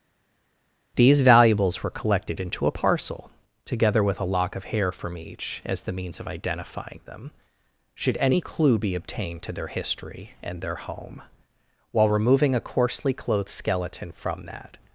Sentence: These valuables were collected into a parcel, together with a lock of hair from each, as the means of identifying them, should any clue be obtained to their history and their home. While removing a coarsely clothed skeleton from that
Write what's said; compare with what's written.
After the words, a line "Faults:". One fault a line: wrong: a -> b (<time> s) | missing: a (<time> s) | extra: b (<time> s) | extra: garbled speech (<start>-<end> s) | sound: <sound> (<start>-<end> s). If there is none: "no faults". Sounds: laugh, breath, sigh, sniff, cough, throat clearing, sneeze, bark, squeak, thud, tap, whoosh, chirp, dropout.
These valuables were collected into a parcel, together with a lock of hair from each, as the means of identifying them, should any clue be obtained to their history and their home. While removing a coarsely clothed skeleton from that
Faults:
no faults